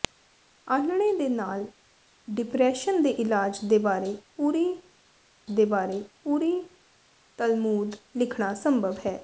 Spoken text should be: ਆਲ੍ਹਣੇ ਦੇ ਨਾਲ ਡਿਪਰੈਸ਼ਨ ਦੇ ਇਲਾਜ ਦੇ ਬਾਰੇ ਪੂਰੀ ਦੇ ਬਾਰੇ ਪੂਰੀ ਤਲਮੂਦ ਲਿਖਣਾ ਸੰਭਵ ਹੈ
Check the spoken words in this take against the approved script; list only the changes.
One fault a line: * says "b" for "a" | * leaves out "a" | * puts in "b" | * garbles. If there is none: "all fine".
all fine